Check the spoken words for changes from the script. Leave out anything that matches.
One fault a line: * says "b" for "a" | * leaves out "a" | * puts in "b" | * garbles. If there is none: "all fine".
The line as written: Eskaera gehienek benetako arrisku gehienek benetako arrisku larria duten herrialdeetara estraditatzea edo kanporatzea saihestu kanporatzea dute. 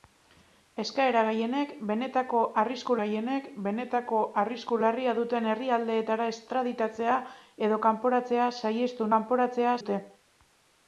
all fine